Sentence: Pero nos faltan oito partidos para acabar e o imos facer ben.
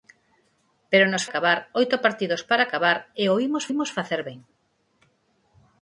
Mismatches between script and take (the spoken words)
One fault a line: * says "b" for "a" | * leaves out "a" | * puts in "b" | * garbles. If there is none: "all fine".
* says "acabar" for "faltan"
* puts in "imos"